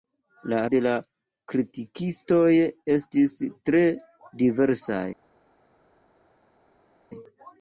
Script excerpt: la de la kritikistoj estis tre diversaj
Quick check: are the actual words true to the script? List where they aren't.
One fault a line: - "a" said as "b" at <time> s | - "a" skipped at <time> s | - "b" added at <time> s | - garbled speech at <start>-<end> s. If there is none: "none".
none